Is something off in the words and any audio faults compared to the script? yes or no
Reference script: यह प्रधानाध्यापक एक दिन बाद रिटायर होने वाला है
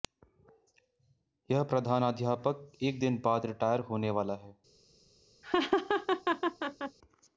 yes